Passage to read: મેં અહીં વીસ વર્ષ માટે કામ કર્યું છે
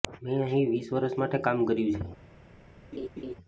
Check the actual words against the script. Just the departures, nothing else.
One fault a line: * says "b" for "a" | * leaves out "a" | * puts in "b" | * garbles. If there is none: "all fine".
all fine